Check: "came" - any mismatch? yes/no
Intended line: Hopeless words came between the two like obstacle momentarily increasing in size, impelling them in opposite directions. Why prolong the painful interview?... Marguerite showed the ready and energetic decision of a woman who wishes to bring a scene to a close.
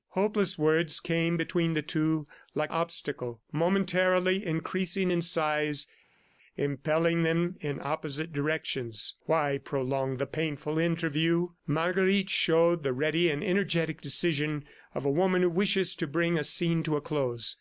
no